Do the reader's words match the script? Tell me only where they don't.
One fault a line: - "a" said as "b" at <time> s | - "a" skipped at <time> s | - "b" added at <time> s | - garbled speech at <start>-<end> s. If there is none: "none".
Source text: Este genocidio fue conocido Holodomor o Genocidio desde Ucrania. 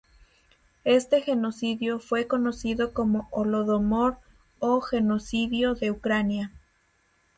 - "como" added at 2.9 s
- "desde" said as "de" at 5.7 s